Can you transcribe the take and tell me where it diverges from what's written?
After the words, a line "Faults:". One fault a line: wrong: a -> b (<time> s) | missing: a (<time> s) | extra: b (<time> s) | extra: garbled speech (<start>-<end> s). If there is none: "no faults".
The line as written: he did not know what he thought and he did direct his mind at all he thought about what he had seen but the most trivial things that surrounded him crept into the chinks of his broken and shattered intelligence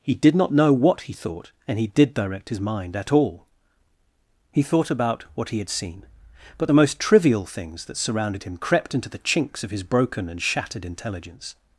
he did not know what he thought and he did direct his mind at all he thought about what he had seen but the most trivial things that surrounded him crept into the chinks of his broken and shattered intelligence
Faults:
no faults